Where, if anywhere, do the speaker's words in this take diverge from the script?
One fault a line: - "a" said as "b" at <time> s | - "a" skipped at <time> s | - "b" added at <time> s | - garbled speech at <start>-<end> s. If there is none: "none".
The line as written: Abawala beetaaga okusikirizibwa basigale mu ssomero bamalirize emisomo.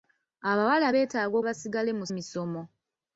- "okusikirizibwa" skipped at 1.4 s
- "ssomero bamalirize" skipped at 2.0 s